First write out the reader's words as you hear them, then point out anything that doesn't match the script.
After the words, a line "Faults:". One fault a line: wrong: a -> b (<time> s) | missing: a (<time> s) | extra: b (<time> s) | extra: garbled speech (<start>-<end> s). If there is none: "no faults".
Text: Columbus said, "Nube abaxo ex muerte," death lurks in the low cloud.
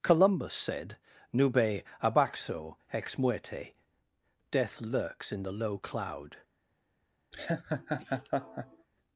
Columbus said, "Nube abaxo ex muerte," death lurks in the low cloud.
Faults:
no faults